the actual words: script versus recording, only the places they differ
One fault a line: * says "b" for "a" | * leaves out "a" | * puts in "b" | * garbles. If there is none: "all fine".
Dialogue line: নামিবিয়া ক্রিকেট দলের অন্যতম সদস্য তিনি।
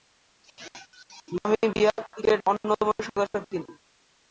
* leaves out "দলের"